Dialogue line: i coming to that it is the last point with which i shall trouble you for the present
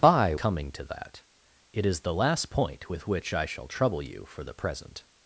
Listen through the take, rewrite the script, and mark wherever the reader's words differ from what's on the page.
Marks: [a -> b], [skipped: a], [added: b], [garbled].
i coming to that it is the last point with which i shall trouble you for the present